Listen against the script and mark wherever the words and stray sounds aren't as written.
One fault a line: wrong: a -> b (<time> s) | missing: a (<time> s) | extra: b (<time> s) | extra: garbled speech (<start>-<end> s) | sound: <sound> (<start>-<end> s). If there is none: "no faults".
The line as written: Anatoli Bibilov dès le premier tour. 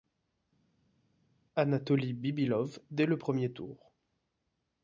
no faults